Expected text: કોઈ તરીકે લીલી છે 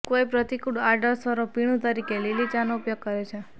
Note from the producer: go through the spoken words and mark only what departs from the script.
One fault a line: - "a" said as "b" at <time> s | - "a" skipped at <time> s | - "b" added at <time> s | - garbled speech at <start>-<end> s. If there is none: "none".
- "પ્રતિકૂળ આડઅસરો પીણું" added at 0.3 s
- "ચાનો ઉપયોગ કરે" added at 2.5 s